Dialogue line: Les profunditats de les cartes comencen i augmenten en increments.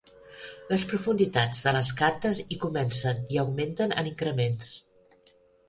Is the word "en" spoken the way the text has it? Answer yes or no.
yes